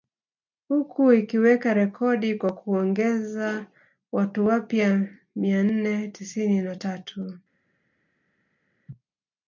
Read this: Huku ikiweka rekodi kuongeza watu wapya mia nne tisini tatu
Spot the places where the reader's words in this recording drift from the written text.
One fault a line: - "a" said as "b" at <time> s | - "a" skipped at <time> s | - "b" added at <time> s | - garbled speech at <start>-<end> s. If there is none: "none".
- "kwa" added at 2.4 s
- "na" added at 6.6 s